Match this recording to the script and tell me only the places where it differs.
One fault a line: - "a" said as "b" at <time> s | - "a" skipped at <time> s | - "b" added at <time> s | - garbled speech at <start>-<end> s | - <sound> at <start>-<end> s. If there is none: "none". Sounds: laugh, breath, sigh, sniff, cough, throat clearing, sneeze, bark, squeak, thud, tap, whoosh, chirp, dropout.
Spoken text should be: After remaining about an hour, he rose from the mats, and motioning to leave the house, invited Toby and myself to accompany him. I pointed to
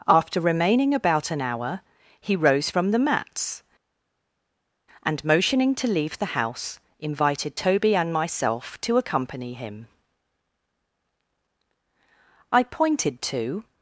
none